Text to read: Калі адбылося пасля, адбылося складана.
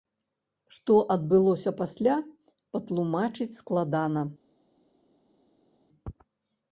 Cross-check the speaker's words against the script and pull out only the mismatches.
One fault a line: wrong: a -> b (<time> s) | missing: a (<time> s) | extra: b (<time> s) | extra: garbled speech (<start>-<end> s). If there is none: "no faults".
wrong: Калі -> Што (0.8 s)
wrong: адбылося -> патлумачыць (2.8 s)